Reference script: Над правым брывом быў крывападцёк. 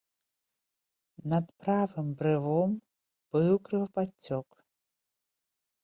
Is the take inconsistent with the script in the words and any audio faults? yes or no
no